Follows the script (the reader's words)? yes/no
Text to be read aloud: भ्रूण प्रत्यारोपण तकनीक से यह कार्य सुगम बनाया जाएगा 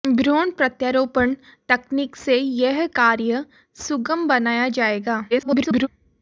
no